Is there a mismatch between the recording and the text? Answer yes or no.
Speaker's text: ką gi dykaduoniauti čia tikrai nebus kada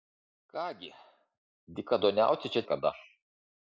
yes